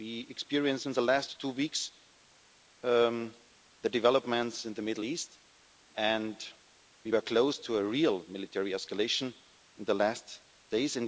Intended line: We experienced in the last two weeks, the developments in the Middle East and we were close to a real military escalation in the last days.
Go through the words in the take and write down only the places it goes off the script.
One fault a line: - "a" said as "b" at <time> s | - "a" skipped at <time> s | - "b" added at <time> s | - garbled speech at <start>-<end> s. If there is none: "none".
none